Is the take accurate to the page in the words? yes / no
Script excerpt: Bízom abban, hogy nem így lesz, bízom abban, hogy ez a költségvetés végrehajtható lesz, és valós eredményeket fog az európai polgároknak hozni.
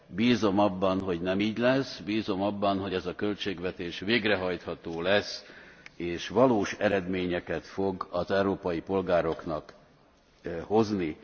yes